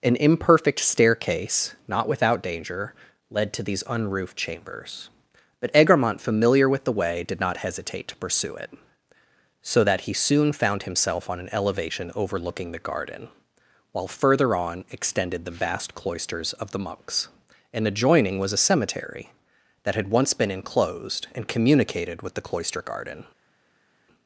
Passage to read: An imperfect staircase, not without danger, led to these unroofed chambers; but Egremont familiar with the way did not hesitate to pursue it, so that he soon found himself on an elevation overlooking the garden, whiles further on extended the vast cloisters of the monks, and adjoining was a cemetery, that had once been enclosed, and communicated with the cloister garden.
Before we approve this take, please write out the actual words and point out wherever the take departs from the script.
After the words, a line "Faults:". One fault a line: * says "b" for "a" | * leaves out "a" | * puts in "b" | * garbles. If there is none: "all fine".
An imperfect staircase, not without danger, led to these unroofed chambers; but Egremont familiar with the way did not hesitate to pursue it, so that he soon found himself on an elevation overlooking the garden, while further on extended the vast cloisters of the monks, and adjoining was a cemetery, that had once been enclosed, and communicated with the cloister garden.
Faults:
* says "while" for "whiles"